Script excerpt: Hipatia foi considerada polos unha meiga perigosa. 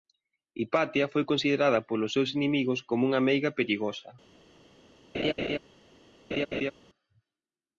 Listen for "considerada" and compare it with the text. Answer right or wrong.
right